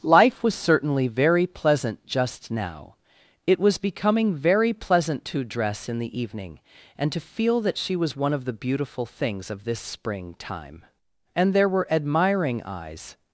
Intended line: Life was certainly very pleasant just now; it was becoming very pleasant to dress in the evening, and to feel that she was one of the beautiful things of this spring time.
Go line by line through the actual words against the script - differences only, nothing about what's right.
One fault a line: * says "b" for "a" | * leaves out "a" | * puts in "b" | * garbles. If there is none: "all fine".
* puts in "And there were admiring eyes"